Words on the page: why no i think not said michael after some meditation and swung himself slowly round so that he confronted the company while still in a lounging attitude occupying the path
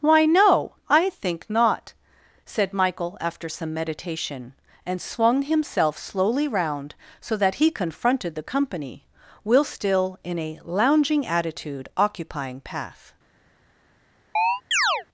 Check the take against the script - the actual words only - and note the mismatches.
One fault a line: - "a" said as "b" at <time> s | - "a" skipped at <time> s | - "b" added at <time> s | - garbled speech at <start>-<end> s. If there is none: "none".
- "while" said as "will" at 9.4 s
- "the" skipped at 12.6 s